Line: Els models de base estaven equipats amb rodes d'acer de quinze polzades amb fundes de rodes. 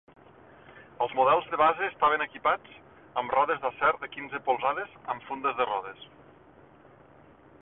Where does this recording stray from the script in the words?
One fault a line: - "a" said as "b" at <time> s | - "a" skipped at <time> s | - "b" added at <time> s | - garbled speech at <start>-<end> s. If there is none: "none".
none